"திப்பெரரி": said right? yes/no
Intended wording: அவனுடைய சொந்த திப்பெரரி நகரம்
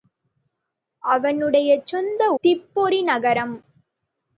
yes